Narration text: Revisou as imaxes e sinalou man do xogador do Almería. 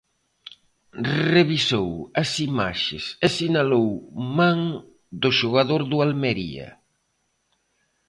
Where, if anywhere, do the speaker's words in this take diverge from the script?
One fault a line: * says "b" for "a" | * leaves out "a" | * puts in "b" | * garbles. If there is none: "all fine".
all fine